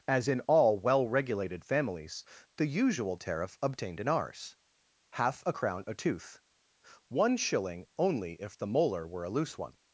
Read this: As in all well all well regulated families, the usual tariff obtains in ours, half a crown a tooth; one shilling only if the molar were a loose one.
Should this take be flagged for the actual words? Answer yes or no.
yes